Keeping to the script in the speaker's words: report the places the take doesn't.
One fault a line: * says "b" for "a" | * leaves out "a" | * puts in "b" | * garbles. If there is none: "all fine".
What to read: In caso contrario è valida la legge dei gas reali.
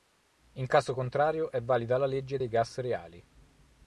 all fine